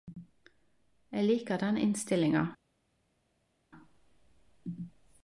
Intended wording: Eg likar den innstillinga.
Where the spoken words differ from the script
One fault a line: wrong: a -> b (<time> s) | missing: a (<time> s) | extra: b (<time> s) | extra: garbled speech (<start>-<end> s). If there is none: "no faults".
no faults